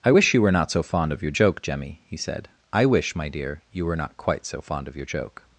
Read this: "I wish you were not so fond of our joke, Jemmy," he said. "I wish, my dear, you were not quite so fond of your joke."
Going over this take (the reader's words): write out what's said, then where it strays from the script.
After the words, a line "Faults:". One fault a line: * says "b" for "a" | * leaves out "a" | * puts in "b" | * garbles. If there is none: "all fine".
"I wish you were not so fond of your joke, Jemmy," he said. "I wish, my dear, you were not quite so fond of your joke."
Faults:
* says "your" for "our"